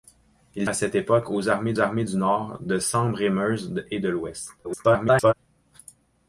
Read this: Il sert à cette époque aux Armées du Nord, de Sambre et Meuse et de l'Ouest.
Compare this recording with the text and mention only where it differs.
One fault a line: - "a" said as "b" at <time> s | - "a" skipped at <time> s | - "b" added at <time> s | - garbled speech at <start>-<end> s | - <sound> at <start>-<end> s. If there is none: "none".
- "sert" skipped at 0.7 s
- "Armées" added at 1.8 s
- garbled speech at 4.6-5.3 s